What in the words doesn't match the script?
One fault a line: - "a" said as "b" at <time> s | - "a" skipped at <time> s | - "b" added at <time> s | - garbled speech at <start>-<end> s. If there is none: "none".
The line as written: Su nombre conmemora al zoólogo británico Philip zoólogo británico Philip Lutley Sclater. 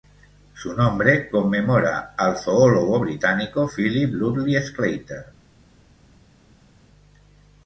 - "zoólogo británico Philip" skipped at 4.1 s